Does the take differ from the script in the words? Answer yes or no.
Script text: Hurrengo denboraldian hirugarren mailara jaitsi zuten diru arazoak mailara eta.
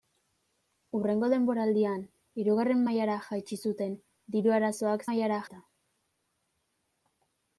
no